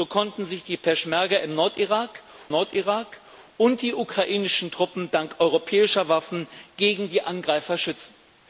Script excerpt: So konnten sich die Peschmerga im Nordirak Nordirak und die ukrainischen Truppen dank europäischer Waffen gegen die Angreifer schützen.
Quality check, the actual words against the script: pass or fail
pass